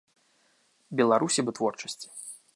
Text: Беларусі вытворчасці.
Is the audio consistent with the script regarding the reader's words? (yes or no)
yes